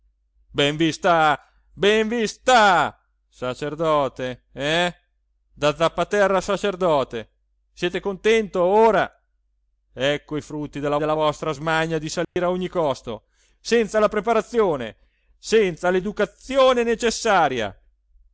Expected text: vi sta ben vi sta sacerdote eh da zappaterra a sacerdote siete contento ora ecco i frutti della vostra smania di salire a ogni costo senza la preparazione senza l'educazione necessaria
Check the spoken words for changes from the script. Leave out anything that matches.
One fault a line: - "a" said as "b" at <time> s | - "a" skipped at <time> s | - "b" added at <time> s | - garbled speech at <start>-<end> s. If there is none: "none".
- "della" added at 11.0 s